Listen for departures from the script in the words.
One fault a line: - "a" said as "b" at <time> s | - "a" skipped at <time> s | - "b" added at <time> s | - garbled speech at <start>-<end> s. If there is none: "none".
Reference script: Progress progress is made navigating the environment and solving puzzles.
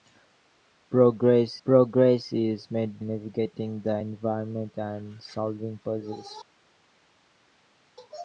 none